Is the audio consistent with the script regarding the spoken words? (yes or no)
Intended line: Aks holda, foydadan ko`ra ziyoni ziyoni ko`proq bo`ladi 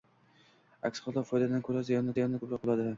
yes